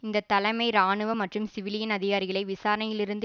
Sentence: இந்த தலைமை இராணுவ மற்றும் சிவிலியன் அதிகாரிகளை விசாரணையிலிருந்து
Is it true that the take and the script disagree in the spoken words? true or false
false